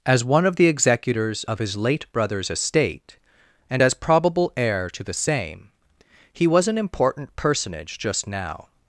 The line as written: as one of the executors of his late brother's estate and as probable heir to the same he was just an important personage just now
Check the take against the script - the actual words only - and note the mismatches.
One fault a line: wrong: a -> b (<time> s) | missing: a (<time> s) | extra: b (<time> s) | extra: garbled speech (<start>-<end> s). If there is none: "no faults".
missing: just (6.7 s)